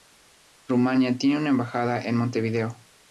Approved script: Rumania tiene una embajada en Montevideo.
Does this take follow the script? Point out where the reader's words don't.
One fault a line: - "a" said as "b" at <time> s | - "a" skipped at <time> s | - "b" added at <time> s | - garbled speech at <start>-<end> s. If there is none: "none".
none